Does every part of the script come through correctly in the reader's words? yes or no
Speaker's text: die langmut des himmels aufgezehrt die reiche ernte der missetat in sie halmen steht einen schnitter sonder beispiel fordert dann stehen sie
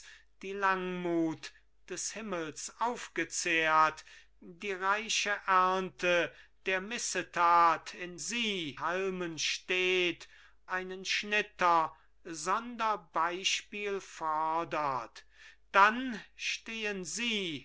yes